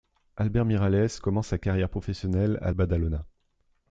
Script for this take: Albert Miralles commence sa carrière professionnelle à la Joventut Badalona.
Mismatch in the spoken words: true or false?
true